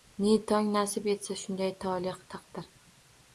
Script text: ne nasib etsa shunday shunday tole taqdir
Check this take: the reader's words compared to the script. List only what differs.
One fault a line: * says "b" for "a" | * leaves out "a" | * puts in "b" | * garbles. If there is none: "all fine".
* puts in "tong"
* leaves out "shunday"